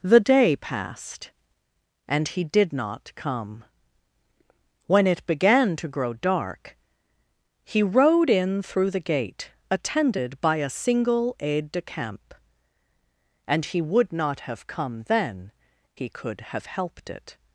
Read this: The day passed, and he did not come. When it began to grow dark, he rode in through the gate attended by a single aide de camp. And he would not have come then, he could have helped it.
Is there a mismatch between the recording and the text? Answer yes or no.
no